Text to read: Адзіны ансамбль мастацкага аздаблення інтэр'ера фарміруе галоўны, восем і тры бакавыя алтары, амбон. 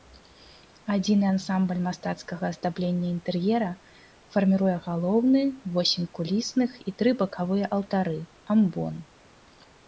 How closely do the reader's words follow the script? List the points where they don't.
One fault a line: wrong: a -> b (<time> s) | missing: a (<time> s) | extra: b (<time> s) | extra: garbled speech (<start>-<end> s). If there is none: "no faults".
extra: кулісных (6.2 s)